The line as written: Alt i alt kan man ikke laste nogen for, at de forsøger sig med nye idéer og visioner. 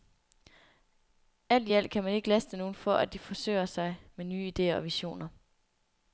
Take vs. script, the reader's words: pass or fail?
pass